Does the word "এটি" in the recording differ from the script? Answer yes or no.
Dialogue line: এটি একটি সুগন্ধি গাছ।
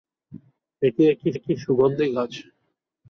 no